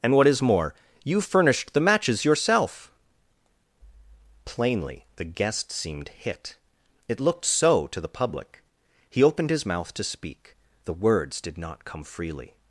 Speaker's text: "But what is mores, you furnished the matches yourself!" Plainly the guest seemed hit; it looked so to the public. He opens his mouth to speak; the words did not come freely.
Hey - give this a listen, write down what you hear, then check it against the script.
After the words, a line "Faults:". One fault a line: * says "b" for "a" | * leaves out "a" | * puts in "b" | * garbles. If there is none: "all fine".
"And what is more, you furnished the matches yourself!" Plainly the guest seemed hit; it looked so to the public. He opened his mouth to speak; the words did not come freely.
Faults:
* says "And" for "But"
* says "more" for "mores"
* says "opened" for "opens"